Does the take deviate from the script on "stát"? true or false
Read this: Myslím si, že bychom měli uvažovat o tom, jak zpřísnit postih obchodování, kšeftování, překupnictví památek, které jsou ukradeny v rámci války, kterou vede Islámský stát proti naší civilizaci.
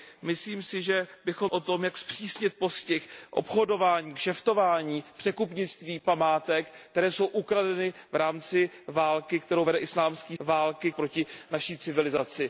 true